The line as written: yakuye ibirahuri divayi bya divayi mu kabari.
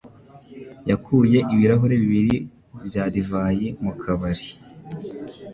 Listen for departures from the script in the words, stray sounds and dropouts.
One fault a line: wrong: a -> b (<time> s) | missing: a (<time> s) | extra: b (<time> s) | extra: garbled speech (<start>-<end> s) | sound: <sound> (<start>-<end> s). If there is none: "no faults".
wrong: divayi -> bibiri (2.0 s)